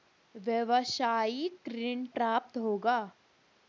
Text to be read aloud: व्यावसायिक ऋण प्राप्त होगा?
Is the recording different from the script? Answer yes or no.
no